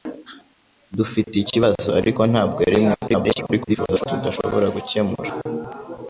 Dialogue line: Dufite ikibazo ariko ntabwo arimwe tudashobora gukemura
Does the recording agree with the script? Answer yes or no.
no